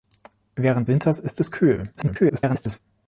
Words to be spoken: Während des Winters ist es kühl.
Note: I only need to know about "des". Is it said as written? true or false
false